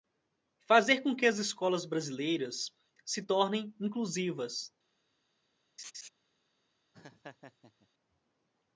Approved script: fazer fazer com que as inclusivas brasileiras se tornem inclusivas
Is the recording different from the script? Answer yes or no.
yes